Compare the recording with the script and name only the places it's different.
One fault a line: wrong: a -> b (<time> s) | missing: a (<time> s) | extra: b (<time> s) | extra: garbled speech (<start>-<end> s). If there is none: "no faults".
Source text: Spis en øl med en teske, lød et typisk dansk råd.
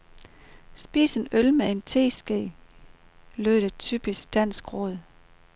no faults